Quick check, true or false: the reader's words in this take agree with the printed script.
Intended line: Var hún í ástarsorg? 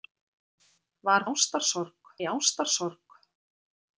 false